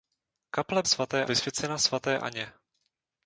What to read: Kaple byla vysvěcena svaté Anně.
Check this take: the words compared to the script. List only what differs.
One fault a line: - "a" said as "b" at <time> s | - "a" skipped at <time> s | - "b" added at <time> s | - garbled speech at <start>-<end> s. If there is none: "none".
- "byla" said as "svaté" at 0.9 s